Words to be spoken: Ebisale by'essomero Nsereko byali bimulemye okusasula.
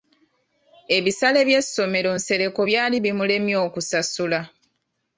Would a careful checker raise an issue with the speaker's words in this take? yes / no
no